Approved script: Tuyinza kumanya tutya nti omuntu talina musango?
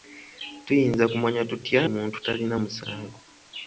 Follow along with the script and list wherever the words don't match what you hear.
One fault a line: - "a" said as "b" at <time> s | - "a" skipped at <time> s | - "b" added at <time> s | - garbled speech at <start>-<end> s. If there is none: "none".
- "nti" skipped at 1.8 s